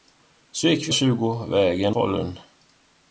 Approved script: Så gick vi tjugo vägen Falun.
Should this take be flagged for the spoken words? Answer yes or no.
no